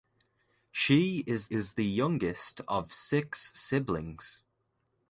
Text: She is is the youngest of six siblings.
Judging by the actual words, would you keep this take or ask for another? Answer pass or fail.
pass